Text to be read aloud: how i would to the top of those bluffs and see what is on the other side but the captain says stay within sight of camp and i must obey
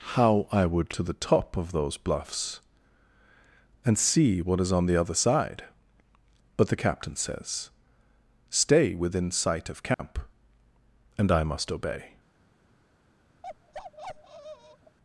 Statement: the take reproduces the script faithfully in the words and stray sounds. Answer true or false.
false